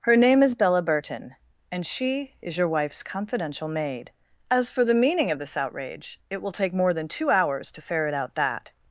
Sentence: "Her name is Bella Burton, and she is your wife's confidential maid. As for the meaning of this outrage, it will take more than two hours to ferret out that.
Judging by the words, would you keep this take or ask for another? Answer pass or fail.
pass